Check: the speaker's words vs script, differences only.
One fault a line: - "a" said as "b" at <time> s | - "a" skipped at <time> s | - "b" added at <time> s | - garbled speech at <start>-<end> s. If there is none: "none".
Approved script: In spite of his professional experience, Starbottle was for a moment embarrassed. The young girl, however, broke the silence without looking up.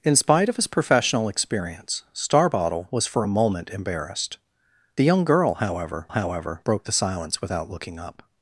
- "however" added at 6.1 s